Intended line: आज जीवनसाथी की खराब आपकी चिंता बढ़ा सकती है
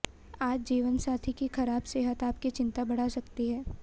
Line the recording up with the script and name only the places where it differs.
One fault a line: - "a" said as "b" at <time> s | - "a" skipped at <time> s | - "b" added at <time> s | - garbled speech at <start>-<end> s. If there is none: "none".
- "सेहत" added at 1.8 s